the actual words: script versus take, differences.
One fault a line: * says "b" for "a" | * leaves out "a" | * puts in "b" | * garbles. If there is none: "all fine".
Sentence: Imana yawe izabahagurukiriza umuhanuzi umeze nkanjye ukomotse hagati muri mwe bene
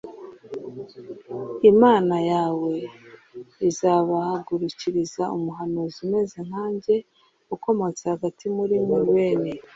all fine